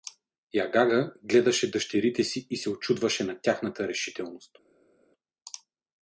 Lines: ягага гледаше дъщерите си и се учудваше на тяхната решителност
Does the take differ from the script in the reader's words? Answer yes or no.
no